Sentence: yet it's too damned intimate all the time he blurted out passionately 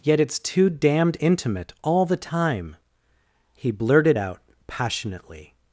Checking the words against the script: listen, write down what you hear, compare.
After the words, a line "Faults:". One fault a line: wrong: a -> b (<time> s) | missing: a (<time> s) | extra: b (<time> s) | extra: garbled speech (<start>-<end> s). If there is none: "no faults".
yet it's too damned intimate all the time he blurted out passionately
Faults:
no faults